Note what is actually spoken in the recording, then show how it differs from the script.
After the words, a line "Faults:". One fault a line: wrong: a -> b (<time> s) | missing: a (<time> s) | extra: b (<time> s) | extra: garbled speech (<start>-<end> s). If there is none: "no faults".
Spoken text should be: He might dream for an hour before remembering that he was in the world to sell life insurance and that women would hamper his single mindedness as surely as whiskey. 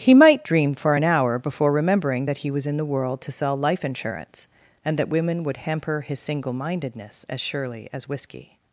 He might dream for an hour before remembering that he was in the world to sell life insurance and that women would hamper his single mindedness as surely as whiskey.
Faults:
no faults